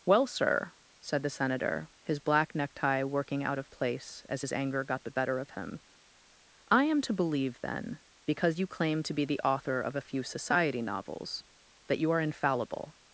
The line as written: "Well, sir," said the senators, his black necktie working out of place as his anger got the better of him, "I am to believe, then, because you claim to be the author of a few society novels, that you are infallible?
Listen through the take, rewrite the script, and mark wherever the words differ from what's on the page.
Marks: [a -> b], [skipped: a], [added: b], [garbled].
"Well, sir," said the [senators, -> senator] his black necktie working out of place as his anger got the better of him, "I am to believe, then, because you claim to be the author of a few society novels, that you are infallible?